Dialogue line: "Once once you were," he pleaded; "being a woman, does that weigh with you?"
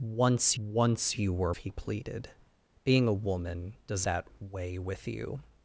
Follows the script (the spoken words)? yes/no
yes